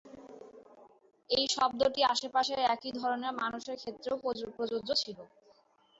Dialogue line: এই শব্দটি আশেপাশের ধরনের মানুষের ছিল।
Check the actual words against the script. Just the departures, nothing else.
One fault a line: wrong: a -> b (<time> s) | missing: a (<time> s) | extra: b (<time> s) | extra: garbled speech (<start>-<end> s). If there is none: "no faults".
extra: একই (2.7 s)
extra: ক্ষেত্রেও প্রযোজ্য (3.8 s)